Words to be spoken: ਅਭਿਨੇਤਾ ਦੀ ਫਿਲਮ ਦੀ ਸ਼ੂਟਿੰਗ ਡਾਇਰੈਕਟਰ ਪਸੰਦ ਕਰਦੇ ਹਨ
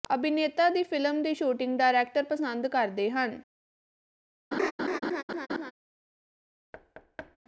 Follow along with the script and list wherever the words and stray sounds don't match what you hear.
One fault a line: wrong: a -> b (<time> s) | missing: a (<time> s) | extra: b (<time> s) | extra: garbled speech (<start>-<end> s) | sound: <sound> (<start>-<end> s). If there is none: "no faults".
sound: laugh (4.5-5.7 s)
sound: thud (6.7-7.4 s)